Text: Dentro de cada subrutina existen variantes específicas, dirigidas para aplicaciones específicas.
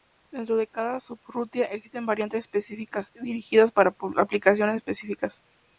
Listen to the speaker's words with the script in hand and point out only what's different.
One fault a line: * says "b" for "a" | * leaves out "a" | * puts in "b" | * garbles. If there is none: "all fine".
all fine